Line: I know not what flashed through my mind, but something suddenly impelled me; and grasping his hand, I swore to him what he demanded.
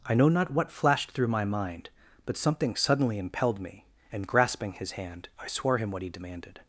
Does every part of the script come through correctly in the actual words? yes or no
no